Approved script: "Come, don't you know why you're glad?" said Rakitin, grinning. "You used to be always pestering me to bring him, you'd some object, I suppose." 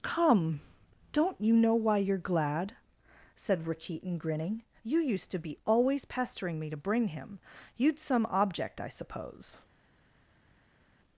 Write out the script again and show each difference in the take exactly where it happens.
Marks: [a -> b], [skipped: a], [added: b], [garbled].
"Come, don't you know why you're glad?" said Rakitin, grinning. "You used to be always pestering me to bring him, you'd some object, I suppose."